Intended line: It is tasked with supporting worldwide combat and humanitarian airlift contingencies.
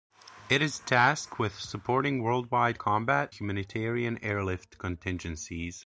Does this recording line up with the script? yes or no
no